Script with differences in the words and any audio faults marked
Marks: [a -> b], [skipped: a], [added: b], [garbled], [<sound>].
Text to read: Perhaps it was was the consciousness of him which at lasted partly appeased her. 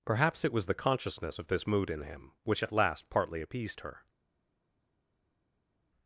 Perhaps it was [skipped: was] the consciousness of [added: this mood in] him which at [lasted -> last] partly appeased her.